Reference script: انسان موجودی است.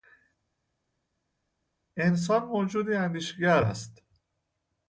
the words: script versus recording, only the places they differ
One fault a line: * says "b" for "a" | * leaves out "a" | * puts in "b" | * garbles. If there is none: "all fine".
* puts in "اندیشگر"